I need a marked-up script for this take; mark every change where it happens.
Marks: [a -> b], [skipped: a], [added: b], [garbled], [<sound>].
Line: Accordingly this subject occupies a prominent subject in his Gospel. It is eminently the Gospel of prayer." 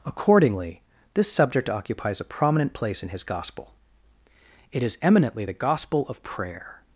Accordingly this subject occupies a prominent [subject -> place] in his Gospel. It is eminently the Gospel of prayer."